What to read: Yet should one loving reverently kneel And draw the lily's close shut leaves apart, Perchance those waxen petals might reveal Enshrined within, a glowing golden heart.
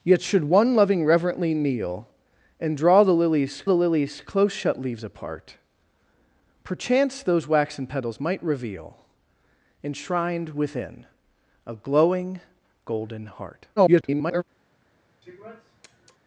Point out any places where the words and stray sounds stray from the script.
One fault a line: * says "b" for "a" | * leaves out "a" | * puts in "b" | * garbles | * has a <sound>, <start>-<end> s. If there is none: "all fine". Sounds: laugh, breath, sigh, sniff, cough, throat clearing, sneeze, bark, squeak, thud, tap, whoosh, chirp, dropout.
* puts in "the lily's"
* garbles
* has a sniff, 15.2-16.2 s